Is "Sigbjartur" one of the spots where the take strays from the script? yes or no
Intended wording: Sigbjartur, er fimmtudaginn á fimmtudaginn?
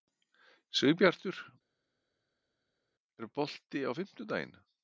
no